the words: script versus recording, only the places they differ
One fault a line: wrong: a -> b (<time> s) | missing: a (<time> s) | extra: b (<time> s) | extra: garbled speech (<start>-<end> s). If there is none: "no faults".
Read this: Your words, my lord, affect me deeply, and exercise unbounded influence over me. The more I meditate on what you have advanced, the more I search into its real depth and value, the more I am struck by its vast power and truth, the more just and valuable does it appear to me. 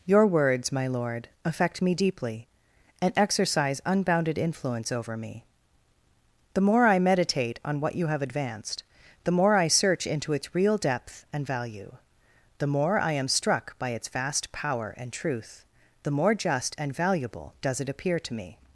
no faults